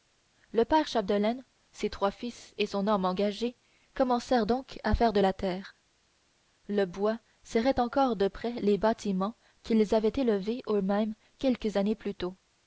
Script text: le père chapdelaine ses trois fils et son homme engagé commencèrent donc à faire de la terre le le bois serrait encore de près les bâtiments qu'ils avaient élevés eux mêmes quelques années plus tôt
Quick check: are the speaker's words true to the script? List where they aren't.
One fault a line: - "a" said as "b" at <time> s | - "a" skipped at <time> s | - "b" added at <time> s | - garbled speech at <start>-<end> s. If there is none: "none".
- "le" skipped at 6.9 s